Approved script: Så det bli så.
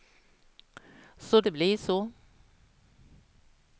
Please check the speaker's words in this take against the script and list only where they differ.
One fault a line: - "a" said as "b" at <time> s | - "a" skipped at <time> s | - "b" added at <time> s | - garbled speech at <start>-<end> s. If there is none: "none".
none